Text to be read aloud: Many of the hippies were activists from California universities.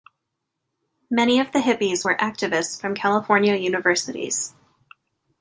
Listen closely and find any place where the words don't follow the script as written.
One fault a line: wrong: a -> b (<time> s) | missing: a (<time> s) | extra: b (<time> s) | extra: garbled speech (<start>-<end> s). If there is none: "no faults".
no faults